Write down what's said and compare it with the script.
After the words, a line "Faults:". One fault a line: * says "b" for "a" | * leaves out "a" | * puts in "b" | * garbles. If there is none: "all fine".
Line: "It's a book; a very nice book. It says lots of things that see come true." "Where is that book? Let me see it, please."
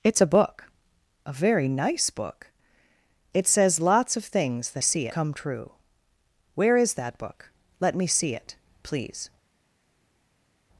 "It's a book; a very nice book. It says lots of things that see come true." "Where is that book? Let me see it, please."
Faults:
all fine